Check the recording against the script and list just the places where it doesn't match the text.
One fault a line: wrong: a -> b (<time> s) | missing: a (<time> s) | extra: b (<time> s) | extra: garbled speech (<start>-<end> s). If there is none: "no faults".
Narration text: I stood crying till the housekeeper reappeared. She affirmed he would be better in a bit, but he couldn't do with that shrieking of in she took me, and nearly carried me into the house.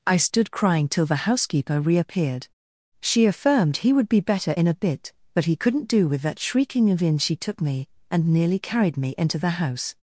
no faults